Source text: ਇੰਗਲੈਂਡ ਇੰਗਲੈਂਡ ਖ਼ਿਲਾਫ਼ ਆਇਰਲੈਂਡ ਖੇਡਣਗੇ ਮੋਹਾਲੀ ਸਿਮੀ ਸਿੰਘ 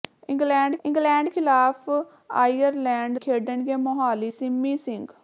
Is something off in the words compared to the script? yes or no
no